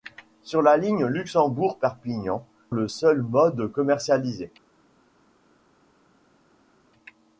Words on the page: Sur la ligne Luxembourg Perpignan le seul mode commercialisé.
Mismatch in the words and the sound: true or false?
false